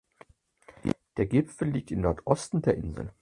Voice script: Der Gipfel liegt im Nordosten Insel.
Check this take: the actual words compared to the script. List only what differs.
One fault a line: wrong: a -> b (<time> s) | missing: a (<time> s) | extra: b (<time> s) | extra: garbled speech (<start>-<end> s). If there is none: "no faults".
extra: der (2.6 s)